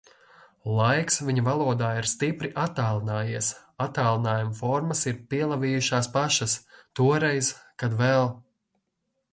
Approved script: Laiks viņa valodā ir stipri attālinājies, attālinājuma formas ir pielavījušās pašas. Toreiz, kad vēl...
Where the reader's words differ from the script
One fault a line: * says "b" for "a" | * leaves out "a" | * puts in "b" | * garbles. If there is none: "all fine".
all fine